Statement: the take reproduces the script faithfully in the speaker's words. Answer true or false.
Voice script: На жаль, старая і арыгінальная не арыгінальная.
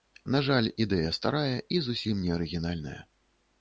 false